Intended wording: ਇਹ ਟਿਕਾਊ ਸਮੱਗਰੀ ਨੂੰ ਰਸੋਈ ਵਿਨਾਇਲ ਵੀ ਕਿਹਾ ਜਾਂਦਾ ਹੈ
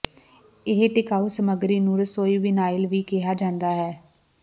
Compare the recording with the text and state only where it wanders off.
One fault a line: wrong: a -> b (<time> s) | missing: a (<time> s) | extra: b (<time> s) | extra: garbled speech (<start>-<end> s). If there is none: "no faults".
no faults